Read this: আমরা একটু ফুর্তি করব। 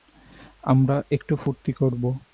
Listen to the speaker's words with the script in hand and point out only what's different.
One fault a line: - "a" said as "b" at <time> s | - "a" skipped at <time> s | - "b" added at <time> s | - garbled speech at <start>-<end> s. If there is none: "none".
none